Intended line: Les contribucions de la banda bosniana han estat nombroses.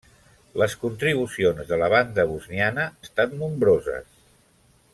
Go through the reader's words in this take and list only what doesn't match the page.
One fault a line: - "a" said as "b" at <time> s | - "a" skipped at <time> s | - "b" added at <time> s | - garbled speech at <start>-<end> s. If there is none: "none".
- "han" skipped at 2.9 s